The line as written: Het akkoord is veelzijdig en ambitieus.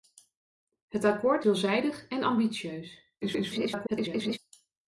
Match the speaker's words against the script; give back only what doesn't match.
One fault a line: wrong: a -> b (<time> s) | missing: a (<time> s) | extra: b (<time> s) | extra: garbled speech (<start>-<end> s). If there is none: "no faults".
missing: is (1.4 s)
extra: garbled speech (3.2-4.4 s)